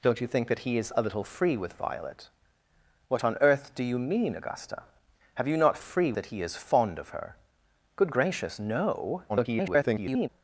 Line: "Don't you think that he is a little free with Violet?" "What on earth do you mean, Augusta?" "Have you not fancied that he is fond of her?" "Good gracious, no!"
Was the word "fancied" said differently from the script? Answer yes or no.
yes